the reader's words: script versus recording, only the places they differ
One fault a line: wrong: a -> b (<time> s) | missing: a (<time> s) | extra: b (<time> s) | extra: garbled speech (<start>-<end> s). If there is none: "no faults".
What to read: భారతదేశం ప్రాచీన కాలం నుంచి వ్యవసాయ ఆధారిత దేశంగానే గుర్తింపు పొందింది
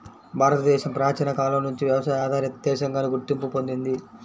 no faults